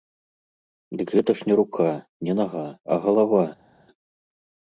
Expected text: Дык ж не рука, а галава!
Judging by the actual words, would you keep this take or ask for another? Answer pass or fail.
fail